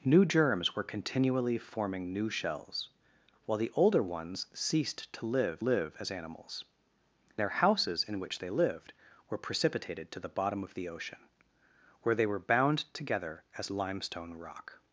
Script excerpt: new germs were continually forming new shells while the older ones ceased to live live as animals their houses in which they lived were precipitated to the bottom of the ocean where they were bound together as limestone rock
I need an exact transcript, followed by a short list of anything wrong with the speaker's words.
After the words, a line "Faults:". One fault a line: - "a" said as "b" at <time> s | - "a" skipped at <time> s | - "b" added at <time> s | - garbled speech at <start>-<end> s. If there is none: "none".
new germs were continually forming new shells while the older ones ceased to live live as animals their houses in which they lived were precipitated to the bottom of the ocean where they were bound together as limestone rock
Faults:
none